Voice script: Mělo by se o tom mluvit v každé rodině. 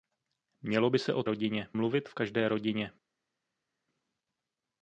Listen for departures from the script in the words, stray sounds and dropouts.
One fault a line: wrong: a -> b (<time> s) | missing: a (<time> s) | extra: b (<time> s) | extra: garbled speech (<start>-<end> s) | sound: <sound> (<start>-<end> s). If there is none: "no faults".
wrong: tom -> rodině (1.3 s)